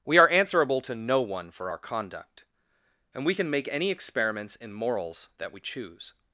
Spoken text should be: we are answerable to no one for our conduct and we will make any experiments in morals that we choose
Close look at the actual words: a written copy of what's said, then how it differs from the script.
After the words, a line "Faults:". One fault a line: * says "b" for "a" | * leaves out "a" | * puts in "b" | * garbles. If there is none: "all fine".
we are answerable to no one for our conduct and we can make any experiments in morals that we choose
Faults:
* says "can" for "will"